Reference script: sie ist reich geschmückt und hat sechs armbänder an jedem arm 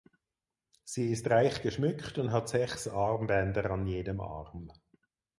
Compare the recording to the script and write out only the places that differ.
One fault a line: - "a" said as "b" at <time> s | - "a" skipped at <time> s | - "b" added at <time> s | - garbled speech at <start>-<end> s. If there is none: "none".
none